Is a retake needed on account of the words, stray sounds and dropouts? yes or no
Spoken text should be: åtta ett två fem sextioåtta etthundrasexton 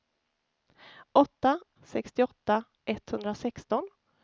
yes